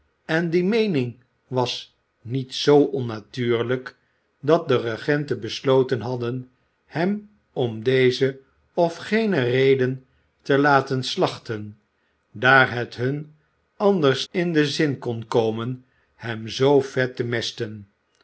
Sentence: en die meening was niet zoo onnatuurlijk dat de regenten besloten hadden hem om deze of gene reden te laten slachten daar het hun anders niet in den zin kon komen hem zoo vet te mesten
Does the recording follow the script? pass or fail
fail